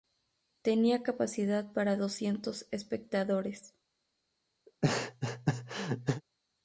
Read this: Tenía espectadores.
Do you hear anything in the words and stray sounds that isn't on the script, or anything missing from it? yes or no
yes